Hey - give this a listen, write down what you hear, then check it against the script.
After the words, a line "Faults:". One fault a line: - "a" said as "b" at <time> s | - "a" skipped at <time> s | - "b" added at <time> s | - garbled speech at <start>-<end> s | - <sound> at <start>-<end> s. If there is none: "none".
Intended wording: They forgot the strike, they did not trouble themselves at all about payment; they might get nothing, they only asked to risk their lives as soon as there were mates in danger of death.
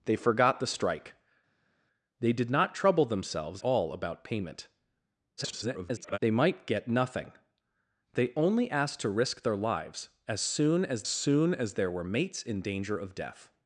They forgot the strike, they did not trouble themselves all about payment; [garbled] they might get nothing, they only asked to risk their lives as soon as soon as there were mates in danger of death.
Faults:
- "at" skipped at 3.6 s
- garbled speech at 5.4-6.2 s
- "soon as" added at 11.1 s